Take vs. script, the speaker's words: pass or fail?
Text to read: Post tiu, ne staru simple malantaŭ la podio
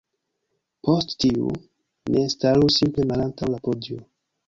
pass